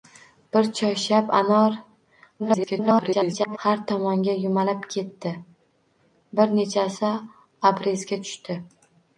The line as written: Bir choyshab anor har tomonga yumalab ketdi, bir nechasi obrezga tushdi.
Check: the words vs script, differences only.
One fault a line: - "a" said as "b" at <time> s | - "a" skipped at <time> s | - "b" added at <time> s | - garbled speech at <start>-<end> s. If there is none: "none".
- garbled speech at 2.4-3.6 s